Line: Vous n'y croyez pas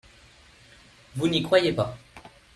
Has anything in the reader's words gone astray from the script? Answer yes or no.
no